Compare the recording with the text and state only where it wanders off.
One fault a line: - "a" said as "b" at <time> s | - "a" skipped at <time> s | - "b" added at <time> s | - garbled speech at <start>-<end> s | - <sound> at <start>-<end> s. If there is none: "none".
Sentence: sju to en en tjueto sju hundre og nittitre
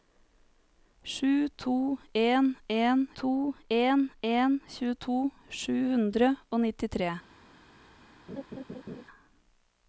- "to en en" added at 3.2 s
- laugh at 8.3-9.0 s